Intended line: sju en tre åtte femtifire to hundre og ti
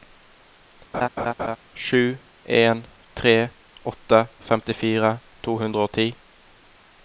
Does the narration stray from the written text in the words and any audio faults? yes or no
yes